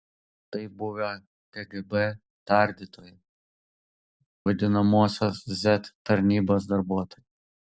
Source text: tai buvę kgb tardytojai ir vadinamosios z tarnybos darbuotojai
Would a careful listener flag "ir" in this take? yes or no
yes